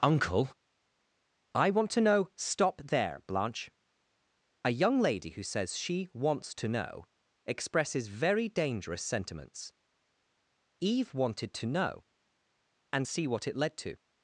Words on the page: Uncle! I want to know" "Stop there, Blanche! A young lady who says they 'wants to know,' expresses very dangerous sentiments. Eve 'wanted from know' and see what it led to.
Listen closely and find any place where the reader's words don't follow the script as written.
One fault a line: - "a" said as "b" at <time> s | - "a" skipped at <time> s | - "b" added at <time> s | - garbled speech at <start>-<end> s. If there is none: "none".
- "they" said as "she" at 5.8 s
- "from" said as "to" at 11.5 s